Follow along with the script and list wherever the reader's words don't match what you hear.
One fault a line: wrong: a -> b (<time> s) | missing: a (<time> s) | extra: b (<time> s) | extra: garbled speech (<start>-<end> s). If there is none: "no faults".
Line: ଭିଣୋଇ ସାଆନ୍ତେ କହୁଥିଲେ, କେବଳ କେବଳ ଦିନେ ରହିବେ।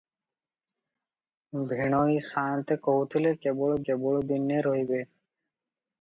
no faults